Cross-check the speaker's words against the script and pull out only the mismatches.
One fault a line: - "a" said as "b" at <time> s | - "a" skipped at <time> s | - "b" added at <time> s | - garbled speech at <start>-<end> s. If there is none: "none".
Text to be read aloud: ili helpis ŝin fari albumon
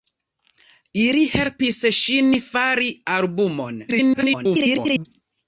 - garbled speech at 3.9-5.1 s